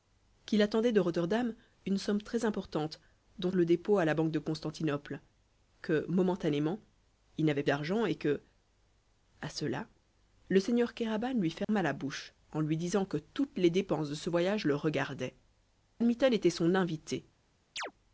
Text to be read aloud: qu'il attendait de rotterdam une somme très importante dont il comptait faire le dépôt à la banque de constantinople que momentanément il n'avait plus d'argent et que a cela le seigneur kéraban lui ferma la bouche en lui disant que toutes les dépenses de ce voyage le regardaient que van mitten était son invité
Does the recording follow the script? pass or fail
fail